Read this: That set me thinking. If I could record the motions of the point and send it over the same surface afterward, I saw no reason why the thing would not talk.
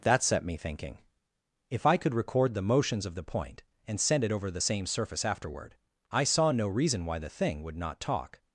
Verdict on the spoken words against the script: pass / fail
pass